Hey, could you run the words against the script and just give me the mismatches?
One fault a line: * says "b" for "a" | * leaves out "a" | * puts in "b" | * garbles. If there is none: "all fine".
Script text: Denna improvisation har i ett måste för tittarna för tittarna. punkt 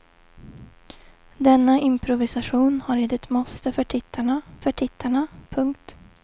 all fine